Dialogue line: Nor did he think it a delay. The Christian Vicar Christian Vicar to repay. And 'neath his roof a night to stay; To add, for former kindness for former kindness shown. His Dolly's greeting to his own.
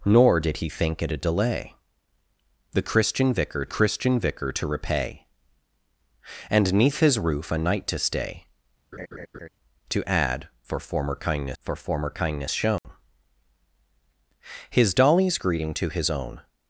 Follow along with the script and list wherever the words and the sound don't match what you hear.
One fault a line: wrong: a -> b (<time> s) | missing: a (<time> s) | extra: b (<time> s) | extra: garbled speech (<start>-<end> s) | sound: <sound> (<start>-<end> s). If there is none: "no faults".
sound: laugh (8.9-9.5 s)
sound: dropout (12.8-12.8 s)